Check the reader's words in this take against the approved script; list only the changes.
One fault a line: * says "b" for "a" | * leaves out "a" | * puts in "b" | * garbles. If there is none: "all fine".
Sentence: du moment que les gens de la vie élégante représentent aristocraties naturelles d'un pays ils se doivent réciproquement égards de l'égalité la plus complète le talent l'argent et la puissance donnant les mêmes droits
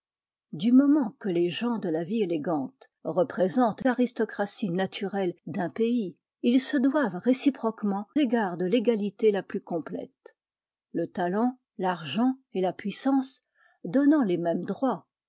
all fine